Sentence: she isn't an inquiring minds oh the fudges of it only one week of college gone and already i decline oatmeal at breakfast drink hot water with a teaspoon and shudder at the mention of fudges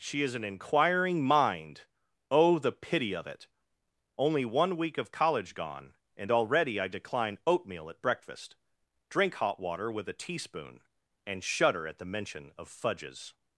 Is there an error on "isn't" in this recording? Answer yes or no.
yes